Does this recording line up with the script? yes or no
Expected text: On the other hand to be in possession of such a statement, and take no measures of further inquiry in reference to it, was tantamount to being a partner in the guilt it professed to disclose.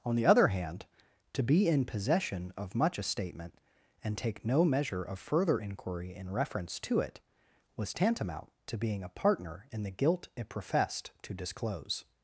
no